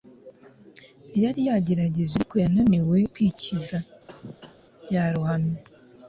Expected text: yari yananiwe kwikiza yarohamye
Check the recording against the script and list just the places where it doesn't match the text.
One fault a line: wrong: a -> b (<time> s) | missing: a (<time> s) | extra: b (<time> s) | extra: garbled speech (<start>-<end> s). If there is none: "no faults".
extra: yagerageje ariko (1.5 s)